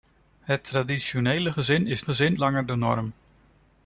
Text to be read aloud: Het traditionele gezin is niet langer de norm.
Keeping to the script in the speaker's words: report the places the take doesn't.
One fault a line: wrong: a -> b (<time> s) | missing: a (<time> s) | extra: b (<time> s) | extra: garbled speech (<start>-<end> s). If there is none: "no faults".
wrong: niet -> gezin (2.0 s)